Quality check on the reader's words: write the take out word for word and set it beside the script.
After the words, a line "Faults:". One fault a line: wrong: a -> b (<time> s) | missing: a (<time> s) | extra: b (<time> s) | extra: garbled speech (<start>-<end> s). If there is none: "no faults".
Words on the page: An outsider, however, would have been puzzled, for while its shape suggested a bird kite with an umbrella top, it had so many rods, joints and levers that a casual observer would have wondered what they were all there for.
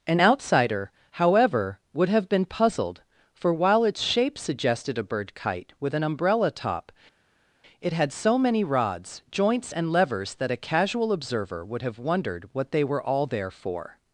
An outsider, however, would have been puzzled, for while its shape suggested a bird kite with an umbrella top, it had so many rods, joints and levers that a casual observer would have wondered what they were all there for.
Faults:
no faults